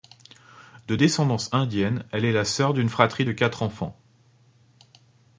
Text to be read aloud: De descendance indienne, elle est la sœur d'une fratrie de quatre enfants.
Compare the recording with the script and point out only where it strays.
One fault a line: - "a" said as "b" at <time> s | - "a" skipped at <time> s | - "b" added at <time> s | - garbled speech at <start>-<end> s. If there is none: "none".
none